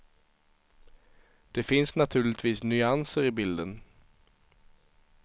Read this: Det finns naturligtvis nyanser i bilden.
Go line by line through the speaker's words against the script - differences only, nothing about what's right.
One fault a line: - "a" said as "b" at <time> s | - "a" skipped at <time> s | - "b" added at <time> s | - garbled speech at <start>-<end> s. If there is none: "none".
none